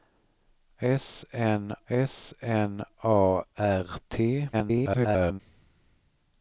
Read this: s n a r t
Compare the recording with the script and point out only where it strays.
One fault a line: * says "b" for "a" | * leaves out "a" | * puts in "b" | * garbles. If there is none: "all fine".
* puts in "s n"
* garbles